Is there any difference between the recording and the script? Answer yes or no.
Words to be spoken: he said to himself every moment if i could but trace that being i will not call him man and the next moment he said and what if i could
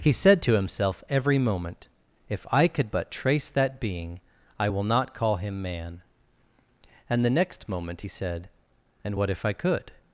no